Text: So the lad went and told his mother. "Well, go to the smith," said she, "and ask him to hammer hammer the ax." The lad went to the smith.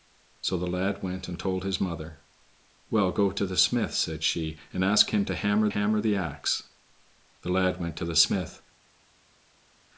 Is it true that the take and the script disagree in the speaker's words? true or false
false